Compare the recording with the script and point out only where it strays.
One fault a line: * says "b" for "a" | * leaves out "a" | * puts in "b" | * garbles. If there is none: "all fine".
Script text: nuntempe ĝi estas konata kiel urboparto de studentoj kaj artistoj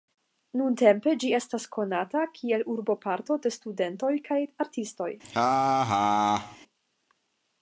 all fine